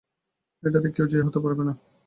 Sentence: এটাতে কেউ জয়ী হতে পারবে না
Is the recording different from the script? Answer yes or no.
no